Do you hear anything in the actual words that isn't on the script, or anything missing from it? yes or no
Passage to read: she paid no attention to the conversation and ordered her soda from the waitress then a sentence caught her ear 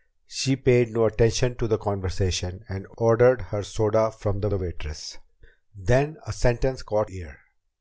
yes